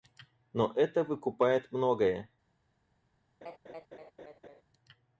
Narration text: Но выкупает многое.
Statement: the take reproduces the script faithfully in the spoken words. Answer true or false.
false